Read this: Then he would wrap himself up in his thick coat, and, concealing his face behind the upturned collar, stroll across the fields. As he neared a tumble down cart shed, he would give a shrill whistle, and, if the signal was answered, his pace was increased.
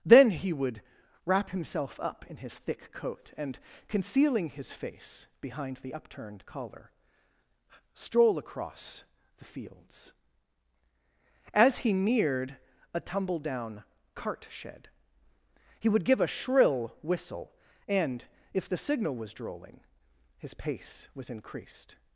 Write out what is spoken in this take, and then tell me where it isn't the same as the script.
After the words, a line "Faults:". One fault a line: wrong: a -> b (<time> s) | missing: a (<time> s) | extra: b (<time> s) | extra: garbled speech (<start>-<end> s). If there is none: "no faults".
Then he would wrap himself up in his thick coat, and, concealing his face behind the upturned collar, stroll across the fields. As he neared a tumble down cart shed, he would give a shrill whistle, and, if the signal was drolling, his pace was increased.
Faults:
wrong: answered -> drolling (19.3 s)